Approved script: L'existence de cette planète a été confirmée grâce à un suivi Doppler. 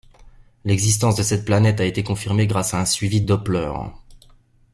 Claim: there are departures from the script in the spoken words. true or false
false